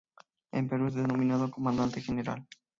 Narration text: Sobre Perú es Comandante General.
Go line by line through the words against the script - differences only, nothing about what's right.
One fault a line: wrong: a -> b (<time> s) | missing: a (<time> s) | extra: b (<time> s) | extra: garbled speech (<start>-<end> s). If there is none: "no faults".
wrong: Sobre -> En (0.5 s)
extra: denominado (0.9 s)